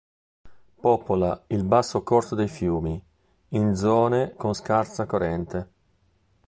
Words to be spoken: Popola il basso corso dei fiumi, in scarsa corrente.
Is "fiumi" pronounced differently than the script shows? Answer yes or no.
no